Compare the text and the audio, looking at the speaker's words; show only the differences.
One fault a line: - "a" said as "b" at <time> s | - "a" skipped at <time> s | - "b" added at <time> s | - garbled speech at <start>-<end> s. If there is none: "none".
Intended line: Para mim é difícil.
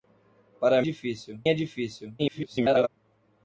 - "mim" said as "difícil" at 0.8 s
- garbled speech at 2.2-2.9 s